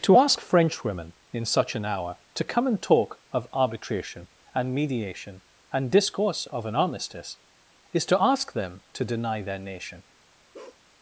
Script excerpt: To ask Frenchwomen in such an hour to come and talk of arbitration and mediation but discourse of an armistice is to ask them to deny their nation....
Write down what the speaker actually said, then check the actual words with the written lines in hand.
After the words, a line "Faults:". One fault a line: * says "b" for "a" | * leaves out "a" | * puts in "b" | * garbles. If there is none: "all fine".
To ask Frenchwomen in such an hour to come and talk of arbitration and mediation and discourse of an armistice is to ask them to deny their nation....
Faults:
* says "and" for "but"